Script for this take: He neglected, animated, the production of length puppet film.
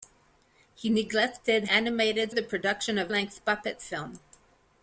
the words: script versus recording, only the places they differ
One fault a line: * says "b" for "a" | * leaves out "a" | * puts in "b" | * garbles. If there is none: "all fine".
all fine